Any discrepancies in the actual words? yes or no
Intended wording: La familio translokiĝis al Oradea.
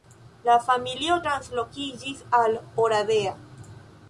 no